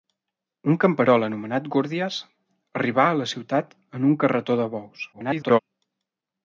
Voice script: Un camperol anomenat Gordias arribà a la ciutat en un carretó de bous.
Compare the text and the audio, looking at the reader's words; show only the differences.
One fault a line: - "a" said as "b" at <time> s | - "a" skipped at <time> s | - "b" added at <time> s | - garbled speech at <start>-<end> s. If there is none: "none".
- garbled speech at 5.1-5.6 s